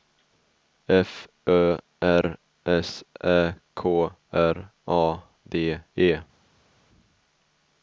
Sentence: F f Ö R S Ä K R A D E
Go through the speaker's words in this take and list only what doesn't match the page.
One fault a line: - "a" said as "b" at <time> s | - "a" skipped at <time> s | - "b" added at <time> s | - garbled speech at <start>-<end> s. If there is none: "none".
- "f" skipped at 1.3 s